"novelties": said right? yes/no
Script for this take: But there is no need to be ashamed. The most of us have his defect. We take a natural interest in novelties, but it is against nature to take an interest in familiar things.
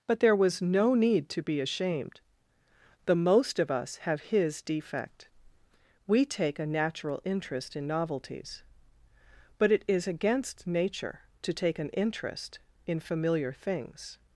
yes